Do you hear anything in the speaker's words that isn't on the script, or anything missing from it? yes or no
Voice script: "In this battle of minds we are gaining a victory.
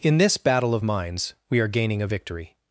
no